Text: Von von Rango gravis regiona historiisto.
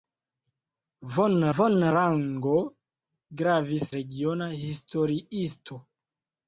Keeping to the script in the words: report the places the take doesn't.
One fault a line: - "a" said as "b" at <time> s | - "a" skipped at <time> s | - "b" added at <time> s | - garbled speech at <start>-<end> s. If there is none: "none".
none